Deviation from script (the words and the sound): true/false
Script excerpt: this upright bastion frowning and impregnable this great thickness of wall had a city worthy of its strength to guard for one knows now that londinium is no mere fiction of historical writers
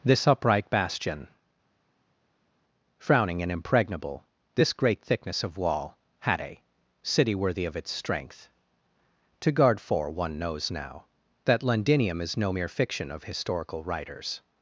false